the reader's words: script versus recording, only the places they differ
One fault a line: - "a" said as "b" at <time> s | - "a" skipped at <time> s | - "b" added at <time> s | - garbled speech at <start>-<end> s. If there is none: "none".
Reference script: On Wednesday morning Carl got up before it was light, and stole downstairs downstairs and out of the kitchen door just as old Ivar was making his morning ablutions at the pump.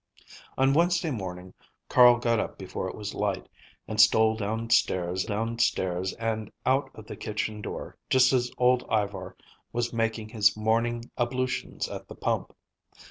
none